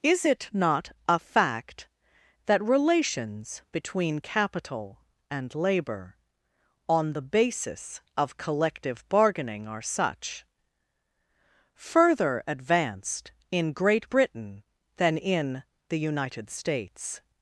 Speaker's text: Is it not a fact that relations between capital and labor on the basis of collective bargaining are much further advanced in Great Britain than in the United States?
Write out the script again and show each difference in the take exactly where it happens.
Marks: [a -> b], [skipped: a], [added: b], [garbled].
Is it not a fact that relations between capital and labor on the basis of collective bargaining are [much -> such] further advanced in Great Britain than in the United States?